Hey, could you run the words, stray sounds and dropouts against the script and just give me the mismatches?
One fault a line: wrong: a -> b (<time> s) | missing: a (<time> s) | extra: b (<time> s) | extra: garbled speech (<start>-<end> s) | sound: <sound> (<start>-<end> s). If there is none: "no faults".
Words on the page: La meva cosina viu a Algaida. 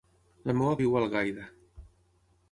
missing: cosina (0.8 s)